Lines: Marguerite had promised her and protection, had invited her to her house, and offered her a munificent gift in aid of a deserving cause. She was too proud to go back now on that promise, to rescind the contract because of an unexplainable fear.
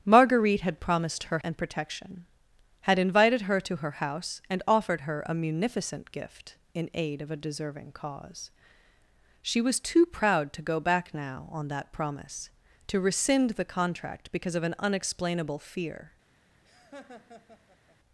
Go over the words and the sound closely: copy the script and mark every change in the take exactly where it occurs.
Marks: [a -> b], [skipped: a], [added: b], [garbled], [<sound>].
Marguerite had promised her and protection, had invited her to her house, and offered her a munificent gift in aid of a deserving cause. She was too proud to go back now on that promise, to rescind the contract because of an unexplainable fear. [laugh]